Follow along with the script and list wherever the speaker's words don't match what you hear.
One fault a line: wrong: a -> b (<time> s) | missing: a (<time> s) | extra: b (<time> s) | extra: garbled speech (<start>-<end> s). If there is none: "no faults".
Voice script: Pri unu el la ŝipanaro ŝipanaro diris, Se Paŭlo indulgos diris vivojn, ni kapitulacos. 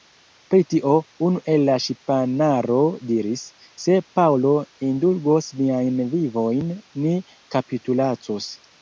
extra: tio (0.7 s)
missing: ŝipanaro (2.8 s)
wrong: diris -> niajn (5.6 s)